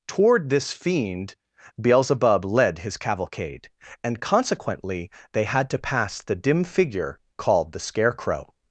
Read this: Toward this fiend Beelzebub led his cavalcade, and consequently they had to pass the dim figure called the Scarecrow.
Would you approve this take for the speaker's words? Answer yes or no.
yes